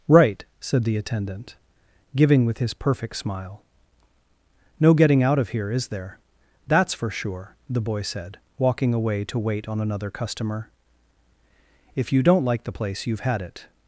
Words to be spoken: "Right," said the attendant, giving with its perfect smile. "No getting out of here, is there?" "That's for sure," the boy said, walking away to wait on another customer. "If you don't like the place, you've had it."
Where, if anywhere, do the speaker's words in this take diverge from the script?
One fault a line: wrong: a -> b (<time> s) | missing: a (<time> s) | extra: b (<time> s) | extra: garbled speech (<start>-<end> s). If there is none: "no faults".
wrong: its -> his (2.6 s)